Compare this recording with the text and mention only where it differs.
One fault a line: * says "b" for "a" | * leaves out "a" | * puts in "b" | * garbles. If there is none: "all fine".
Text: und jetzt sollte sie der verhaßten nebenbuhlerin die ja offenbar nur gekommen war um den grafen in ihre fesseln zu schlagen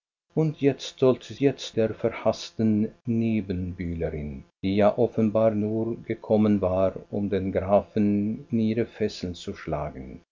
* says "jetzt" for "sie"